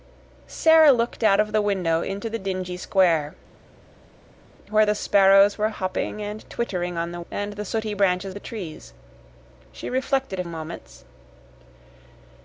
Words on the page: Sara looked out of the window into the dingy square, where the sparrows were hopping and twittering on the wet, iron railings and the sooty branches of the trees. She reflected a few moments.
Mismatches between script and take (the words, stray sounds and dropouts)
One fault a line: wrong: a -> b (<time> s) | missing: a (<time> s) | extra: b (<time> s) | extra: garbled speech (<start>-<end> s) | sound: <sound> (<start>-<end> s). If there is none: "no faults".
missing: wet iron railings (7.2 s)
missing: of (8.3 s)
missing: few (10.4 s)